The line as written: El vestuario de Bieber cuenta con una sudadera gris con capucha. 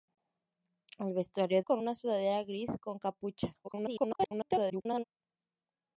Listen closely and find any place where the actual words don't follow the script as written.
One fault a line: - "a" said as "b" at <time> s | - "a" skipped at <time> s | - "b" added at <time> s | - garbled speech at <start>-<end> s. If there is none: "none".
- "de Bieber cuenta" skipped at 1.6 s
- garbled speech at 3.6-5.0 s